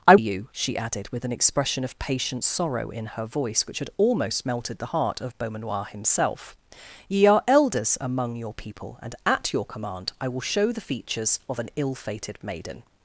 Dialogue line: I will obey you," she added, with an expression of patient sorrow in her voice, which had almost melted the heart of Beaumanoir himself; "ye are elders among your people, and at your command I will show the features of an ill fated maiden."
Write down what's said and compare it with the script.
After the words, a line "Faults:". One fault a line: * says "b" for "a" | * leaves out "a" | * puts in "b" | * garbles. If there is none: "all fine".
I you," she added, with an expression of patient sorrow in her voice, which had almost melted the heart of Beaumanoir himself; "ye are elders among your people, and at your command I will show the features of an ill fated maiden."
Faults:
* leaves out "will obey"